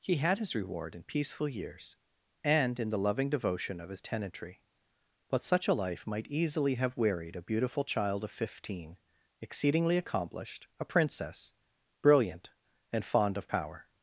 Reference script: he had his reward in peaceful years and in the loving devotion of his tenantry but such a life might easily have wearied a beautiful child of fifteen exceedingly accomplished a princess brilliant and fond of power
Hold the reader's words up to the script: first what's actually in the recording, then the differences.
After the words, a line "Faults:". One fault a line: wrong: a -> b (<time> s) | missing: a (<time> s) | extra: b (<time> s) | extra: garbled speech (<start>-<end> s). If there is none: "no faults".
he had his reward in peaceful years and in the loving devotion of his tenantry but such a life might easily have wearied a beautiful child of fifteen exceedingly accomplished a princess brilliant and fond of power
Faults:
no faults